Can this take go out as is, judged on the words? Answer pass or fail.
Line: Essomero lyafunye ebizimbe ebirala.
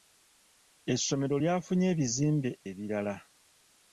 pass